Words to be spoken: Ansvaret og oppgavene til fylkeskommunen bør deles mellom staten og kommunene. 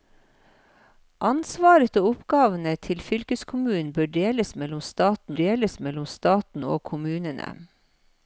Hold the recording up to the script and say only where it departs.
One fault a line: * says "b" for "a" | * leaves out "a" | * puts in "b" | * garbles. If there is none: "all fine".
* puts in "deles mellom staten"